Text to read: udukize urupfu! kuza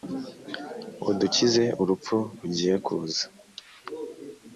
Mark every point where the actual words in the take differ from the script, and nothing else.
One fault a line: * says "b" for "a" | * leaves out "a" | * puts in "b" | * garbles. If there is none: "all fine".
* puts in "rugiye"